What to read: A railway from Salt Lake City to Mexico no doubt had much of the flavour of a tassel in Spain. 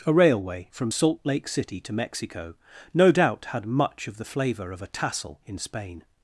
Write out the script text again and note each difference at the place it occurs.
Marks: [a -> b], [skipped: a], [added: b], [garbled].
A railway from Salt Lake City to Mexico no doubt had much of the flavour of a tassel in Spain.